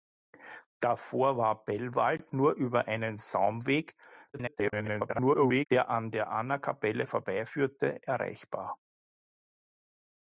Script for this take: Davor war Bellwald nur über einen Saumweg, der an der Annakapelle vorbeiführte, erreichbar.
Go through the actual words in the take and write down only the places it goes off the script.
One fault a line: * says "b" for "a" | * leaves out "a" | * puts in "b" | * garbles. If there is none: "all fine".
* garbles